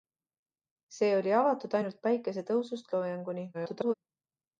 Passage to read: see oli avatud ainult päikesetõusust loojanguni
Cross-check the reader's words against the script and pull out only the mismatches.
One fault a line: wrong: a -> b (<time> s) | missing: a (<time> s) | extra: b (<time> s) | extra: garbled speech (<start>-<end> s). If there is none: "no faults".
extra: garbled speech (3.5-3.9 s)